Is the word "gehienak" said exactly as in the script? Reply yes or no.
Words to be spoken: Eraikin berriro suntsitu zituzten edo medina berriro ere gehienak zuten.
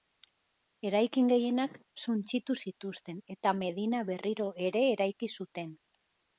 no